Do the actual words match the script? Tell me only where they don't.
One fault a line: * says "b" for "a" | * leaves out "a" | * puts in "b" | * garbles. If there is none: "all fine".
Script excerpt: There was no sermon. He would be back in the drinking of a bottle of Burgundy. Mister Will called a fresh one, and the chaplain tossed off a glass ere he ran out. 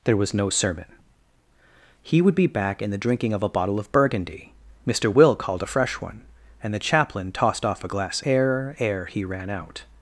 * puts in "ere"